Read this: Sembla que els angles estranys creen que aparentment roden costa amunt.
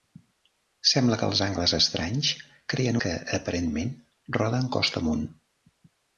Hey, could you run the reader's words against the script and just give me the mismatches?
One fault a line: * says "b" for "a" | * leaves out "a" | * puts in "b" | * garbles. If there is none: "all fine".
all fine